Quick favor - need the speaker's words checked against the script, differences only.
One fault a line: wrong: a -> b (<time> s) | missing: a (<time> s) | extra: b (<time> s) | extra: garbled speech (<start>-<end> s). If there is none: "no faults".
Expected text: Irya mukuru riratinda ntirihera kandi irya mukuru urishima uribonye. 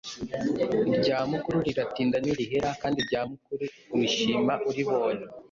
no faults